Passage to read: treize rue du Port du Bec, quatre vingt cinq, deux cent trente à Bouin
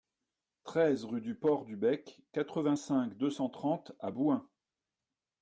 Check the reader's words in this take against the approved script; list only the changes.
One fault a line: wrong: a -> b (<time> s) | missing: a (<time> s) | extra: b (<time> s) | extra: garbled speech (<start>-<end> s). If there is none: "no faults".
no faults